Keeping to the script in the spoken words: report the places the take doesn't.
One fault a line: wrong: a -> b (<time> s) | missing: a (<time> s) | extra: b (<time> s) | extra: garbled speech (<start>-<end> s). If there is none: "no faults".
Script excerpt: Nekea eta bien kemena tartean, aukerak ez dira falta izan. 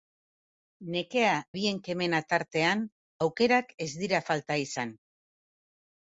missing: eta (1.3 s)